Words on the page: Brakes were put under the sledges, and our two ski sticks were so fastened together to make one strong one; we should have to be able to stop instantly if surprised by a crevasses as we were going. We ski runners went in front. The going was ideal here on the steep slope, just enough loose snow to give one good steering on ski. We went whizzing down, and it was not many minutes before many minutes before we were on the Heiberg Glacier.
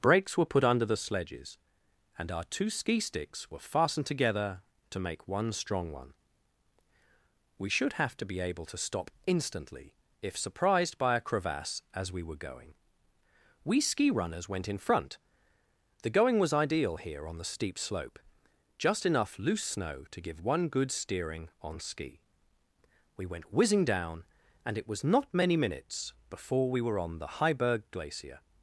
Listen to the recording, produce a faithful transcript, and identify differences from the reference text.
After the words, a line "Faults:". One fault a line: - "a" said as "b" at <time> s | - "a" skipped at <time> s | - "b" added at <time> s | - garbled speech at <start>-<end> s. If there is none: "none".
Brakes were put under the sledges, and our two ski sticks were fastened together to make one strong one; we should have to be able to stop instantly if surprised by a crevasse as we were going. We ski runners went in front. The going was ideal here on the steep slope, just enough loose snow to give one good steering on ski. We went whizzing down, and it was not many minutes before we were on the Heiberg Glacier.
Faults:
- "so" skipped at 3.7 s
- "crevasses" said as "crevasse" at 11.2 s
- "many minutes before" skipped at 26.7 s